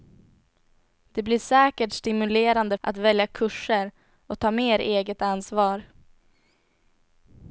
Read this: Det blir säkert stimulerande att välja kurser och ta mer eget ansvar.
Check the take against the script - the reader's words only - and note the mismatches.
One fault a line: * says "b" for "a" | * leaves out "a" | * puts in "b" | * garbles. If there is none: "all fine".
all fine